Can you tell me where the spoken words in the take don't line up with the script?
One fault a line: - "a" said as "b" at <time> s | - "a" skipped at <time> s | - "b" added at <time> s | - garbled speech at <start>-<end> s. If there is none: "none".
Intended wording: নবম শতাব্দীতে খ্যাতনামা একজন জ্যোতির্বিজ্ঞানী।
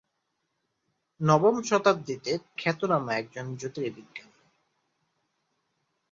none